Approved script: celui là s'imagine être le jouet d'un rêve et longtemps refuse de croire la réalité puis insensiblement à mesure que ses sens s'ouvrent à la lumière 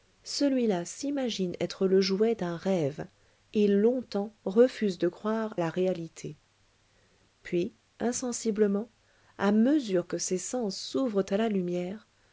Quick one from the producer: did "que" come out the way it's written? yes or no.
yes